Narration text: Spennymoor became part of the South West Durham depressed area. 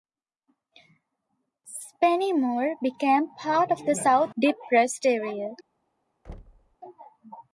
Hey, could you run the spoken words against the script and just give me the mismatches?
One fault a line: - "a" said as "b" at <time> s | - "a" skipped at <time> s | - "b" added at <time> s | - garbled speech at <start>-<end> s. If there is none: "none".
- "West Durham" skipped at 4.3 s